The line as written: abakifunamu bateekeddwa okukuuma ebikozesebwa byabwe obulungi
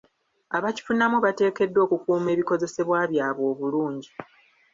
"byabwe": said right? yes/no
yes